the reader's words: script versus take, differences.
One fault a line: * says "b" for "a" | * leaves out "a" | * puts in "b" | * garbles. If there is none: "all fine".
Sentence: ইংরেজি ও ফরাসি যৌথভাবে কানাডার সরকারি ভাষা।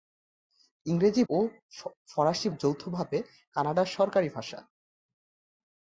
all fine